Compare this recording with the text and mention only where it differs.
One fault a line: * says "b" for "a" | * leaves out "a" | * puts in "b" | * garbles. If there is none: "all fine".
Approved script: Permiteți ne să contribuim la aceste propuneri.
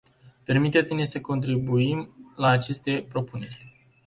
all fine